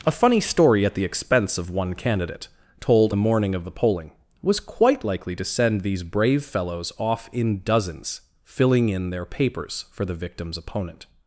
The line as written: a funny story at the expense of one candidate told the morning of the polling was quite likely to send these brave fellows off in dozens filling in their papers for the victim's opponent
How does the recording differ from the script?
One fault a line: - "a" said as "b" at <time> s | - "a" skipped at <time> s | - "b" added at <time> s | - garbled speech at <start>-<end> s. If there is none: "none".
none